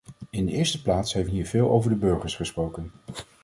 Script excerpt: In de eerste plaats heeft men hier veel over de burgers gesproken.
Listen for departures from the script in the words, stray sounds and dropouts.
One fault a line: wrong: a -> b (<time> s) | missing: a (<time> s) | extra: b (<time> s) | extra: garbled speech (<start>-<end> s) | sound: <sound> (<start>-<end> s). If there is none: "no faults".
missing: men (1.3 s)